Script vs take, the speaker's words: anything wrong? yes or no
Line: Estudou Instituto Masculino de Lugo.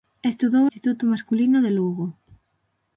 no